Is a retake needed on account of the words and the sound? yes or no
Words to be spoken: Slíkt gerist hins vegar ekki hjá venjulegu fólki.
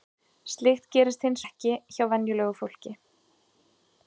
yes